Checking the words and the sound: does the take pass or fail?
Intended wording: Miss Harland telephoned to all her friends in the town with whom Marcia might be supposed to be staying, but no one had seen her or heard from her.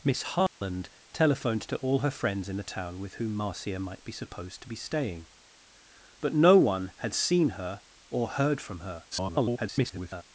fail